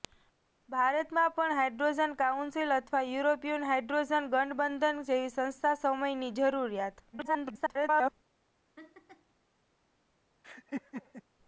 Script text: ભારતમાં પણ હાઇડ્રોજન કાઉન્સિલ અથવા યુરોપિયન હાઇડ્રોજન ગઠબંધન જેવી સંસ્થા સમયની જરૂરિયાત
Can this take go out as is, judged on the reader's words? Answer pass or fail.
fail